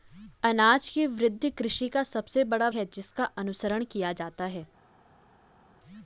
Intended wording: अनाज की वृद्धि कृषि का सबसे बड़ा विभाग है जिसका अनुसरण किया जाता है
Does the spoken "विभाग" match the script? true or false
false